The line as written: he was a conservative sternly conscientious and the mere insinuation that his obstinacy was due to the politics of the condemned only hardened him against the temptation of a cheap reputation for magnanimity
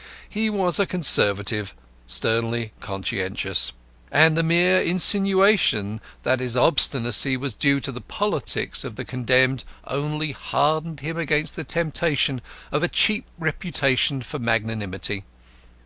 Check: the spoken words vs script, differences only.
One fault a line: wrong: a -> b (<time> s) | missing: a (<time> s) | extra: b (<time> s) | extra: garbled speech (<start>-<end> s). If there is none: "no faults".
no faults